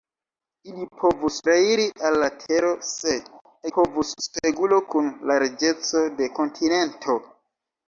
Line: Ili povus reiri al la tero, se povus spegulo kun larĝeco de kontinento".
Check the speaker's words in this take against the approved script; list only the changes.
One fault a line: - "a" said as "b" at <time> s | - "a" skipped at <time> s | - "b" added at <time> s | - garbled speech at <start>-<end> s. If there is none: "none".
none